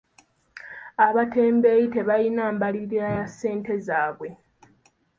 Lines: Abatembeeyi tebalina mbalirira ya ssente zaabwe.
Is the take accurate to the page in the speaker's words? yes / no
yes